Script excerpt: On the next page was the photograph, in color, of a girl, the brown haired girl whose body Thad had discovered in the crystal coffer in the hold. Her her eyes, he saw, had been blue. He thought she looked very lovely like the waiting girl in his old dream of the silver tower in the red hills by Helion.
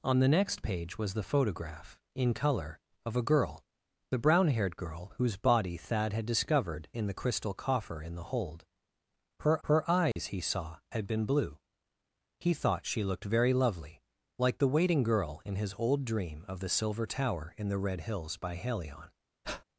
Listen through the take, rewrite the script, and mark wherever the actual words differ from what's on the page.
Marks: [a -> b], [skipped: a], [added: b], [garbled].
On the next page was the photograph, in color, of a girl, the brown haired girl whose body Thad had discovered in the crystal coffer in the hold. Her her eyes, he saw, had been blue. He thought she looked very lovely like the waiting girl in his old dream of the silver tower in the red hills by Helion.